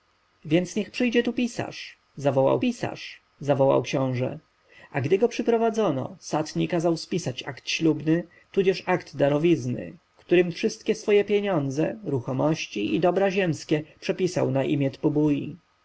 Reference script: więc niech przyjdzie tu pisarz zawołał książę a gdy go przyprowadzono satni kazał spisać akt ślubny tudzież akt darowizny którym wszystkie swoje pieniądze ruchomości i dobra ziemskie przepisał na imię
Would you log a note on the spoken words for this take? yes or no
yes